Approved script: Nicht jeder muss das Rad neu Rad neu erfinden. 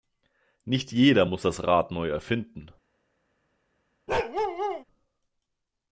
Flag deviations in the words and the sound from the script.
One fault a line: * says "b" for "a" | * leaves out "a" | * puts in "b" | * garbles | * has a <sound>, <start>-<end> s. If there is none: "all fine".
* leaves out "Rad neu"
* has a bark, 4.1-4.8 s